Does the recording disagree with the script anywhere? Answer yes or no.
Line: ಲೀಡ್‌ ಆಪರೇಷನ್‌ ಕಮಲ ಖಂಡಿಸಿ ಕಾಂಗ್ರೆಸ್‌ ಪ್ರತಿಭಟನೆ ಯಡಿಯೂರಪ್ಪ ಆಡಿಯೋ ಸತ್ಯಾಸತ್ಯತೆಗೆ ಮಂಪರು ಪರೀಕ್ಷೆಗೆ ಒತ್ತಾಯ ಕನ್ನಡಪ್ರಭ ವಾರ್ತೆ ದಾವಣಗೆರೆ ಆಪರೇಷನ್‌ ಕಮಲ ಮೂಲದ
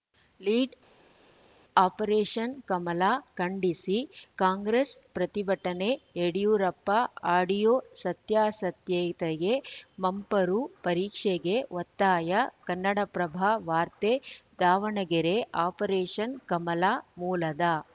no